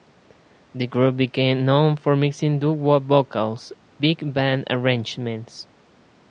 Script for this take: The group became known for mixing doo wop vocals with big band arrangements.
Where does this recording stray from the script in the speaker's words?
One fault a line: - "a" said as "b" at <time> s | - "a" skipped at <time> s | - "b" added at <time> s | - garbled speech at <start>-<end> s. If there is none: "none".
- "with" skipped at 3.7 s